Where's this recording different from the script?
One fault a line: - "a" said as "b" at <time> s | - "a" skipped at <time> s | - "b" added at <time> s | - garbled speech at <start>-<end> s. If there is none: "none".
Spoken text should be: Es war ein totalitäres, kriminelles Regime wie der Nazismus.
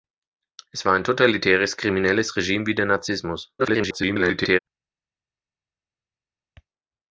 - garbled speech at 3.6-4.6 s